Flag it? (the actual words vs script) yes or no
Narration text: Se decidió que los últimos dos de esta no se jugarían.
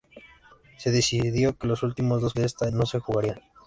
no